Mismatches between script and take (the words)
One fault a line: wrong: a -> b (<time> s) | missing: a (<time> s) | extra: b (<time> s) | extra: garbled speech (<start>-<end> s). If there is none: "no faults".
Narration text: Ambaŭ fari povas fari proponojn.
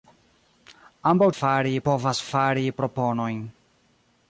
no faults